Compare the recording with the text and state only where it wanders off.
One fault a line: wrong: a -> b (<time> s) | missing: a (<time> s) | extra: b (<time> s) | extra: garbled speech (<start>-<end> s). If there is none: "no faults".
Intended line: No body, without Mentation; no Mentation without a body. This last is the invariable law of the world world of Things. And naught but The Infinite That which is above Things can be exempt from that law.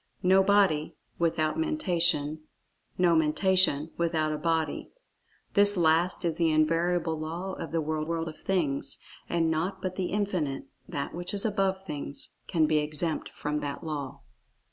no faults